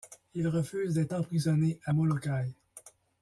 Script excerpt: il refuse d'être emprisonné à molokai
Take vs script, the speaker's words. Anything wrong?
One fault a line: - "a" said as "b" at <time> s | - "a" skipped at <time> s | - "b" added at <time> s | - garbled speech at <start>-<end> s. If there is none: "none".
none